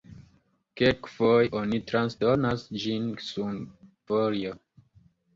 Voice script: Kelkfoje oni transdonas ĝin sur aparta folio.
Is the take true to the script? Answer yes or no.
no